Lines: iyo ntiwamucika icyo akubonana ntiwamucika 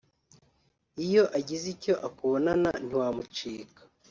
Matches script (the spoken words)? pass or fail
fail